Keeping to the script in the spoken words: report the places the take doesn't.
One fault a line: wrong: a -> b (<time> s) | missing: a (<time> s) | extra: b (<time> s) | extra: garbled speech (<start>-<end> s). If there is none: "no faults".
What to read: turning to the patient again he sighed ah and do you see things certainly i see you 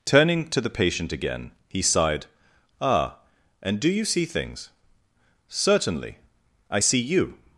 no faults